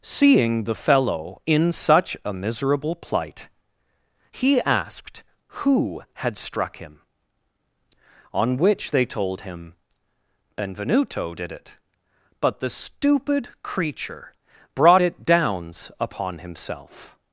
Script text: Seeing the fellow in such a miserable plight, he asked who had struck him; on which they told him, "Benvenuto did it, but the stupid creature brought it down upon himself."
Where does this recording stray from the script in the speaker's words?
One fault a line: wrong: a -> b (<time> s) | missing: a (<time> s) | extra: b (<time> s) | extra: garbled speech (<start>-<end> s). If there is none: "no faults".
wrong: down -> downs (15.2 s)